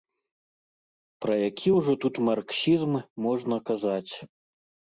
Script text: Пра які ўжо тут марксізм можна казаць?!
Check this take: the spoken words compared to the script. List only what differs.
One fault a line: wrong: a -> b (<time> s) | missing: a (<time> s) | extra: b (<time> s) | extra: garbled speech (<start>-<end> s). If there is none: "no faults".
no faults